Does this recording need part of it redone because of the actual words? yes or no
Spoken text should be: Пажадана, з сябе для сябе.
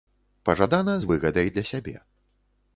yes